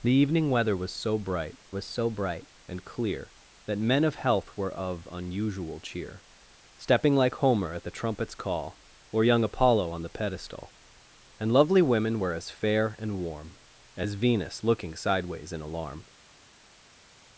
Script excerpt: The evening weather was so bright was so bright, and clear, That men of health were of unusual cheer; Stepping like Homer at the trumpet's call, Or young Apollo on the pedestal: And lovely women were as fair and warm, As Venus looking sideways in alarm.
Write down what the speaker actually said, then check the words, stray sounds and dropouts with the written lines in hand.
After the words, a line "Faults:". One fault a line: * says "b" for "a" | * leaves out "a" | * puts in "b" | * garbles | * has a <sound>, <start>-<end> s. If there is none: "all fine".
The evening weather was so bright was so bright, and clear, That men of health were of unusual cheer; Stepping like Homer at the trumpet's call, Or young Apollo on the pedestal: And lovely women were as fair and warm, As Venus looking sideways in alarm.
Faults:
all fine